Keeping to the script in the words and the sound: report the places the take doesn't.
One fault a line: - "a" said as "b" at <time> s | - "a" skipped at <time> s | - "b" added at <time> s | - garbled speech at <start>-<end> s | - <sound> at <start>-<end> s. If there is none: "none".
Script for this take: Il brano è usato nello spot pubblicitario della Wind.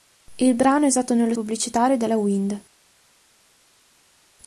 - "spot" skipped at 1.4 s